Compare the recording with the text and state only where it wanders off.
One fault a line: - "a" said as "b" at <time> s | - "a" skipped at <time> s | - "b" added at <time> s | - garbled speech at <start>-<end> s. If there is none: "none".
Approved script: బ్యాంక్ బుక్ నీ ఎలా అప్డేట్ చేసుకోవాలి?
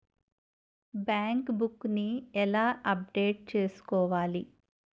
none